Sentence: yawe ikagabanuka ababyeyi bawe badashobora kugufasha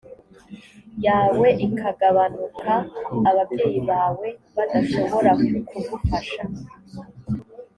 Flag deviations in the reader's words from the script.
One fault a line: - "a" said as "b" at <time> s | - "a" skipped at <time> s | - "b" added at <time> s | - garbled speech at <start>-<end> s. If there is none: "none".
none